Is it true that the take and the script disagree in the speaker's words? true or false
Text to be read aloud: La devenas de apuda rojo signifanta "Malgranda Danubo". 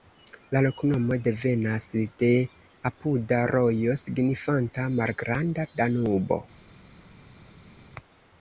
true